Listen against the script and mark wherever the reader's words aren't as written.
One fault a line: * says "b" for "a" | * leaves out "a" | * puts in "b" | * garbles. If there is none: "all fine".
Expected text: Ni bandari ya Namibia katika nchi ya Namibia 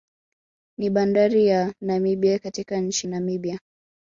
* leaves out "ya"